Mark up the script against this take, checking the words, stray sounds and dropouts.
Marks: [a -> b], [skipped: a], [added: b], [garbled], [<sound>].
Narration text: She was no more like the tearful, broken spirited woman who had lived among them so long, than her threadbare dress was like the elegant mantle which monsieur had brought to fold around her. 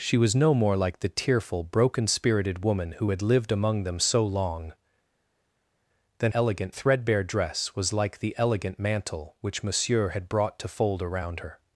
She was no more like the tearful, broken spirited woman who had lived among them so long, than [her -> elegant] threadbare dress was like the elegant mantle which monsieur had brought to fold around her.